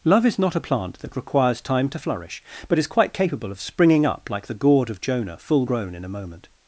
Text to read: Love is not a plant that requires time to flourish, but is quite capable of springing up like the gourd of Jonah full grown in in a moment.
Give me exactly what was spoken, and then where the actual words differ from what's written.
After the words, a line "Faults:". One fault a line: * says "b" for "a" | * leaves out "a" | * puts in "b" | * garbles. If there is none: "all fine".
Love is not a plant that requires time to flourish, but is quite capable of springing up like the gourd of Jonah full grown in a moment.
Faults:
* leaves out "in"